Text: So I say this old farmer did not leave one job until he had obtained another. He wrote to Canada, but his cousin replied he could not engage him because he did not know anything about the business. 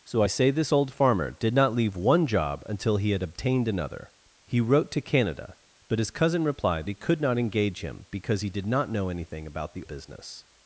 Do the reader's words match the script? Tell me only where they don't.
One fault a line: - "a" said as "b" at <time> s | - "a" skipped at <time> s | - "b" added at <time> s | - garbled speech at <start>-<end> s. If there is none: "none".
none